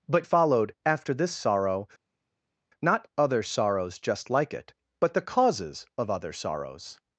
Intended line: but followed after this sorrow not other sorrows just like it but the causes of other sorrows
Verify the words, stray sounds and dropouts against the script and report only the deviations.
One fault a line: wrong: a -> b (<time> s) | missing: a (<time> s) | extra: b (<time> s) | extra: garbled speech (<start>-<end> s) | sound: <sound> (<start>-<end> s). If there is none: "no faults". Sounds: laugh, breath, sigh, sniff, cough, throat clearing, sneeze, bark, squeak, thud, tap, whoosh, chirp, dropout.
no faults